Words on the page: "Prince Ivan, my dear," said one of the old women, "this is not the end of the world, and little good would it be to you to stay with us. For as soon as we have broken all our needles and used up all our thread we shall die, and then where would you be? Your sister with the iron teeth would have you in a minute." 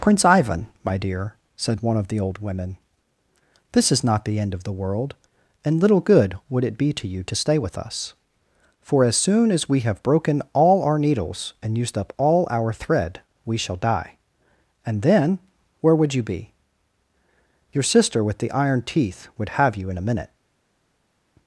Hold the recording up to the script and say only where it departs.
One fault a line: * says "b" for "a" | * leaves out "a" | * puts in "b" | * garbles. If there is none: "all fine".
all fine